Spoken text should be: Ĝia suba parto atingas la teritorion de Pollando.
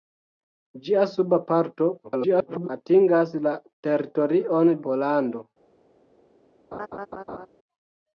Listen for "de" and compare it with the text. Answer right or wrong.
wrong